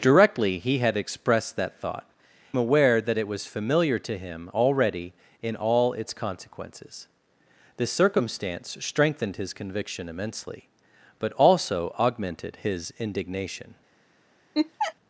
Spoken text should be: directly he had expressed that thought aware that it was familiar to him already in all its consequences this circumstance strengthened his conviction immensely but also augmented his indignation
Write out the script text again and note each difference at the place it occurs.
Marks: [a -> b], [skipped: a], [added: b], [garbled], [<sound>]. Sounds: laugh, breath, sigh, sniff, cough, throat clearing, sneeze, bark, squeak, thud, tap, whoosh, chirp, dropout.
directly he had expressed that thought aware that it was familiar to him already in all its consequences this circumstance strengthened his conviction immensely but also augmented his indignation [laugh]